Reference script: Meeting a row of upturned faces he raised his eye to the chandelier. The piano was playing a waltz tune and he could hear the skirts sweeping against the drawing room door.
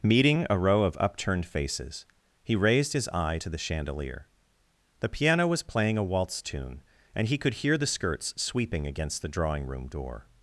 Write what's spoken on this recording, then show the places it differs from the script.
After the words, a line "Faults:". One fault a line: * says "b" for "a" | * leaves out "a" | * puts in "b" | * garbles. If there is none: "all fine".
Meeting a row of upturned faces he raised his eye to the chandelier. The piano was playing a waltz tune and he could hear the skirts sweeping against the drawing room door.
Faults:
all fine